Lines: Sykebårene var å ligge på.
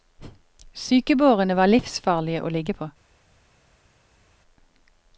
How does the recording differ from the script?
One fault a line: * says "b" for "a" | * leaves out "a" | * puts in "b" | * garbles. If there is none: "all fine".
* puts in "livsfarlige"